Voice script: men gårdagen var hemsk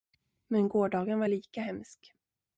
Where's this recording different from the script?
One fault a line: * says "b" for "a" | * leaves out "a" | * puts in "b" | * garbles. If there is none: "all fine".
* puts in "lika"